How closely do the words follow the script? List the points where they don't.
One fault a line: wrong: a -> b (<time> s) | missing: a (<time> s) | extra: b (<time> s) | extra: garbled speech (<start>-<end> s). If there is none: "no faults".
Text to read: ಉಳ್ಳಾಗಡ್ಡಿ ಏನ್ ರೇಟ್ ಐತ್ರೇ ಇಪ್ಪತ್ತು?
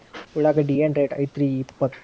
no faults